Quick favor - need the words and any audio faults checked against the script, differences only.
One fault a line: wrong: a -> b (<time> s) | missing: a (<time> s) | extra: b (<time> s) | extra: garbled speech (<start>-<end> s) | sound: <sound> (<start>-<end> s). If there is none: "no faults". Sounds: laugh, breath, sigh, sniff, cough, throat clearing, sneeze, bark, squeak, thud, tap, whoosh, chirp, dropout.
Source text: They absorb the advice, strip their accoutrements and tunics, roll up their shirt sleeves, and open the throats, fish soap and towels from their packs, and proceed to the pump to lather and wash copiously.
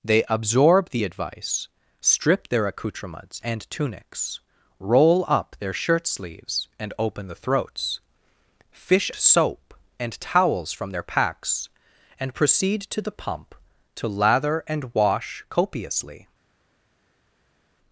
no faults